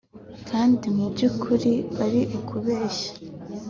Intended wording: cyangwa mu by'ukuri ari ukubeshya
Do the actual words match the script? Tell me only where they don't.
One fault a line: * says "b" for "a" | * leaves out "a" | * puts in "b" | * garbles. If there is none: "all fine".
* says "kandi" for "cyangwa"